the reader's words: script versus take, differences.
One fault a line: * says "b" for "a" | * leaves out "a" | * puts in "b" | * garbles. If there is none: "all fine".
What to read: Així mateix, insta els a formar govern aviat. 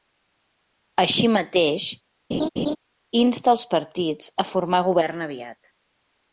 * puts in "partits"